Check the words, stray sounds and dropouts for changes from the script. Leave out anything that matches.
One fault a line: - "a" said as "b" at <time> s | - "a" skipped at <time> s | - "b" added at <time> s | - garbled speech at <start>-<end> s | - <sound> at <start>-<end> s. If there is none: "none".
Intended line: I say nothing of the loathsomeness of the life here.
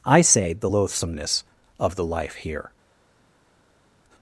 - "nothing of" skipped at 0.5 s